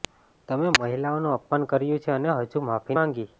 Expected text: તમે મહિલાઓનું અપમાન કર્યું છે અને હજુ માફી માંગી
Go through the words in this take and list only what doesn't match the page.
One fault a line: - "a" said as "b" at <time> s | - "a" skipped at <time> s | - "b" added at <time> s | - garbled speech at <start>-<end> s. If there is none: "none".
none